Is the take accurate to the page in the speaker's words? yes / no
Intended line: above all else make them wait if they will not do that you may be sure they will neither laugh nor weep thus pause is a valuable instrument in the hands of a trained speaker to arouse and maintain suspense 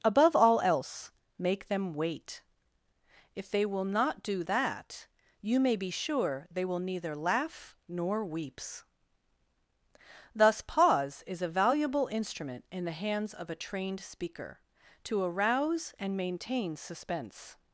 no